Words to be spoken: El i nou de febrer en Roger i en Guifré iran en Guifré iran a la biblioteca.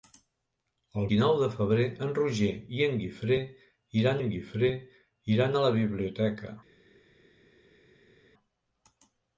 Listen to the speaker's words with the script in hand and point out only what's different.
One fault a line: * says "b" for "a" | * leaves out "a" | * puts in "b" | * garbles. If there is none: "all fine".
all fine